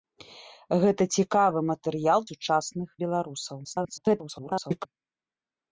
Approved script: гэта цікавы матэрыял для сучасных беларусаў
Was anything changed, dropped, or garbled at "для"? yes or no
yes